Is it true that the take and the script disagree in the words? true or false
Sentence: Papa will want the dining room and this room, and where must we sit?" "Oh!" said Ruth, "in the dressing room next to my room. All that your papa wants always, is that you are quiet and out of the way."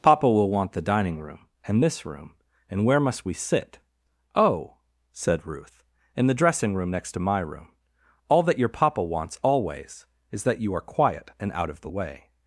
false